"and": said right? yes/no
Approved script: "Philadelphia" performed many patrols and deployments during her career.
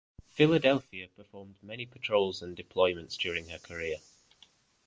yes